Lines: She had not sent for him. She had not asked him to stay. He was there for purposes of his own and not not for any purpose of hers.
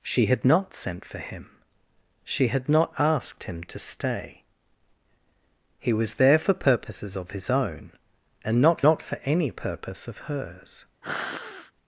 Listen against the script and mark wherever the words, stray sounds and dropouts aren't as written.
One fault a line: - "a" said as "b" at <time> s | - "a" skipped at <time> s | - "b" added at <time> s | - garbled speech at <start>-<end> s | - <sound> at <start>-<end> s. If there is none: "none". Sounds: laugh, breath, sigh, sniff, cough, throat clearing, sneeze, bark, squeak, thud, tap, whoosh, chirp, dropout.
- sniff at 11.0-11.7 s